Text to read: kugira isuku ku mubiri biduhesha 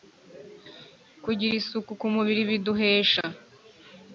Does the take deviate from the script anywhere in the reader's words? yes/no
no